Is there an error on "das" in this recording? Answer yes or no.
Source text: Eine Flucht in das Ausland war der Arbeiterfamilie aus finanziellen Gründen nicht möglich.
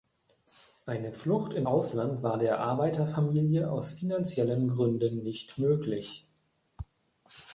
yes